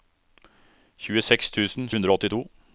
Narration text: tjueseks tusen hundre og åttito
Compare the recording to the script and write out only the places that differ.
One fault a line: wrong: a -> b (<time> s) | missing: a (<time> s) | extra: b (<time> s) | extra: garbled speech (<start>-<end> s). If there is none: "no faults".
no faults